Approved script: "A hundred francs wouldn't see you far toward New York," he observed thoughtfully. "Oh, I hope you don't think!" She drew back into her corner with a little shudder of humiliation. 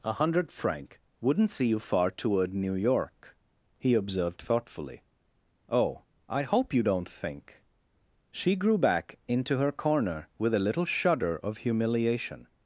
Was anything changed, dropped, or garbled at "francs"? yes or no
yes